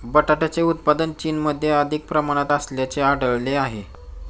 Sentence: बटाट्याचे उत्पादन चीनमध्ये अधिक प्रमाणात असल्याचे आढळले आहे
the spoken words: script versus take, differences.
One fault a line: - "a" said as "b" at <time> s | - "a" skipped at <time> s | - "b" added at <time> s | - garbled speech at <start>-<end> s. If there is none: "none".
none